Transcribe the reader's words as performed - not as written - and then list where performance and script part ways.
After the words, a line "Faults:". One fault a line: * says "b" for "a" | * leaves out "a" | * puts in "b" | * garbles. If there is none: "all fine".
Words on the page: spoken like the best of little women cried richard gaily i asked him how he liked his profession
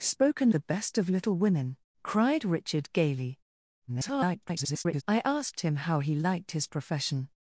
spoken the best of little women cried richard gaily [garbled] i asked him how he liked his profession
Faults:
* leaves out "like"
* garbles